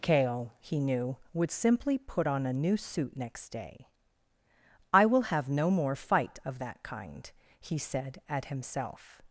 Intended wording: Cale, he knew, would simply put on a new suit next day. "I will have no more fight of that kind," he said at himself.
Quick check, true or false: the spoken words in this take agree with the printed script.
true